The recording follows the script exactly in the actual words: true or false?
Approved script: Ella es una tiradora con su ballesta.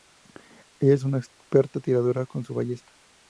false